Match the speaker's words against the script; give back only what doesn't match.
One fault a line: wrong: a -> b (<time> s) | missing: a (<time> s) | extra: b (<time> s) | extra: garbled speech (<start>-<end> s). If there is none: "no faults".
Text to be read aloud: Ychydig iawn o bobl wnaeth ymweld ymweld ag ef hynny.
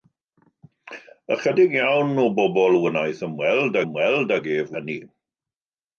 no faults